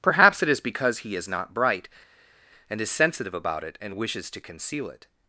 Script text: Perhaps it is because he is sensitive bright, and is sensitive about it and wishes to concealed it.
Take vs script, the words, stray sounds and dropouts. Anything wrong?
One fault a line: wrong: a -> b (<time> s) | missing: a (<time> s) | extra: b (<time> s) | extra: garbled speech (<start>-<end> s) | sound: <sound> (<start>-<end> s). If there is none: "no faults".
wrong: sensitive -> not (1.3 s)
wrong: concealed -> conceal (4.4 s)